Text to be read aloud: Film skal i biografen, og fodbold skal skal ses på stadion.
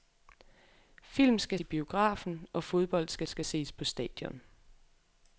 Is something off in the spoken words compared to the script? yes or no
no